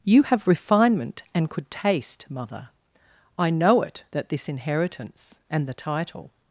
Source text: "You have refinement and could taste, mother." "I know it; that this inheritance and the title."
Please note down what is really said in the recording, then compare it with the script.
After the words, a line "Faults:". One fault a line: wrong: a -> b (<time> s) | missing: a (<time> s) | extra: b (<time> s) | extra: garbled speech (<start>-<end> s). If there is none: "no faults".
"You have refinement and could taste, mother." "I know it; that this inheritance and the title."
Faults:
no faults